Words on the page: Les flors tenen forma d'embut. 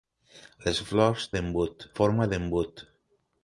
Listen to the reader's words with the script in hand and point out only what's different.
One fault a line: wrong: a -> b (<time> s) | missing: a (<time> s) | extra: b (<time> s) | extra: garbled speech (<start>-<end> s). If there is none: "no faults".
wrong: tenen -> d'embut (1.3 s)